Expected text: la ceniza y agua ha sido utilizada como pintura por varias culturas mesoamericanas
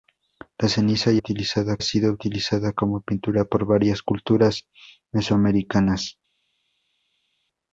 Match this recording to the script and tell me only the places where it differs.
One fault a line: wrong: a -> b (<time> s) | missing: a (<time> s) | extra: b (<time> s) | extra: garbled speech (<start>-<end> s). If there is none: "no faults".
wrong: agua -> utilizada (1.2 s)